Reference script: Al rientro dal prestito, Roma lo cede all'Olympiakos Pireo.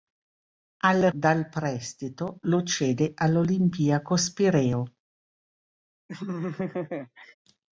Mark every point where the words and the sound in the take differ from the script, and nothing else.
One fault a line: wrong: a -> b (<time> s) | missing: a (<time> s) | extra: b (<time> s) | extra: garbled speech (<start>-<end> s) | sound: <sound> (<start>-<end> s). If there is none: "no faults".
missing: rientro (1.1 s)
missing: Roma (2.4 s)
sound: laugh (6.1-7.3 s)